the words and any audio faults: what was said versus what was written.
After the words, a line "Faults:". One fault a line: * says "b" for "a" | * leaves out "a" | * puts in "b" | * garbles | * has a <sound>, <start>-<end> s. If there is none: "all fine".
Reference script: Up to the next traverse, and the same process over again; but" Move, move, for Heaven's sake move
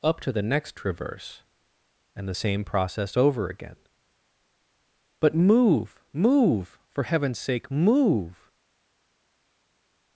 Up to the next traverse, and the same process over again; but" Move, move, for Heaven's sake move
Faults:
all fine